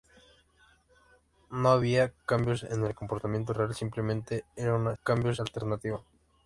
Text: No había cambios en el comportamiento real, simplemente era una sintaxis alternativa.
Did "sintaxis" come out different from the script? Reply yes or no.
yes